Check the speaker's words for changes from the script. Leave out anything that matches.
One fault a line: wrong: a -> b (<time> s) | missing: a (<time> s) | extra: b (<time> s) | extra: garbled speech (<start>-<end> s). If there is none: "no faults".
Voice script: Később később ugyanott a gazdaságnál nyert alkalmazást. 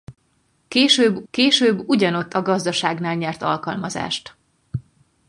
no faults